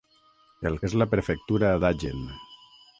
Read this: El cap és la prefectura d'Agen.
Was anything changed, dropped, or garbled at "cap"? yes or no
yes